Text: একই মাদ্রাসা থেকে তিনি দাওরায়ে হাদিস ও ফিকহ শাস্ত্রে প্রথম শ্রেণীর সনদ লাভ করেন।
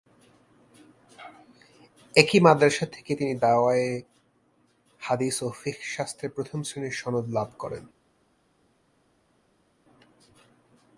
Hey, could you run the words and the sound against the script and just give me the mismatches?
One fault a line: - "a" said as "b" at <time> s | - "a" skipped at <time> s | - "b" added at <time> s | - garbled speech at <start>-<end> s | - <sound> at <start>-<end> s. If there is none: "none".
none